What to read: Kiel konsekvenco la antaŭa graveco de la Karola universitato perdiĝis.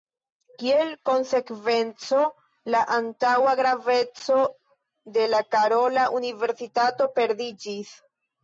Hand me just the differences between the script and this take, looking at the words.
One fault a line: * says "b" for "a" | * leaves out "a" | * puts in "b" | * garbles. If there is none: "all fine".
all fine